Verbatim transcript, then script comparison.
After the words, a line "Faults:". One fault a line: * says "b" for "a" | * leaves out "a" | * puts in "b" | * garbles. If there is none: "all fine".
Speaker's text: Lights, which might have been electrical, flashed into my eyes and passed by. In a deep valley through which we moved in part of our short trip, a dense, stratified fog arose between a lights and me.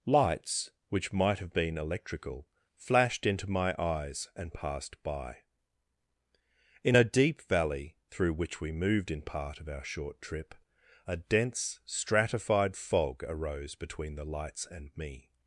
Lights, which might have been electrical, flashed into my eyes and passed by. In a deep valley through which we moved in part of our short trip, a dense, stratified fog arose between the lights and me.
Faults:
* says "the" for "a"